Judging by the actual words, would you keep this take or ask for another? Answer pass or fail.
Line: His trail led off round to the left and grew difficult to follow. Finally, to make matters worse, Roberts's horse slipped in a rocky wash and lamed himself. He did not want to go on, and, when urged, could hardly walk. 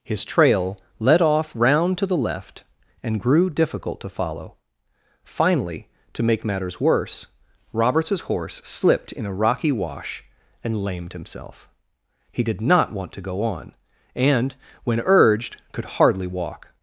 pass